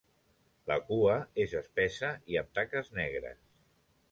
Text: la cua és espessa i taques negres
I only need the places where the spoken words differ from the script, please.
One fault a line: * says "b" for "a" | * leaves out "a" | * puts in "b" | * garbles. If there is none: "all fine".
* puts in "amb"